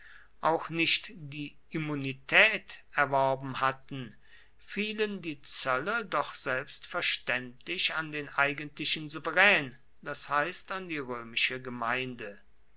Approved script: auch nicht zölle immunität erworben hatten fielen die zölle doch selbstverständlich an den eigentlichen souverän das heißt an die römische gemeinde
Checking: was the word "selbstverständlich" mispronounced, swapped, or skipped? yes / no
no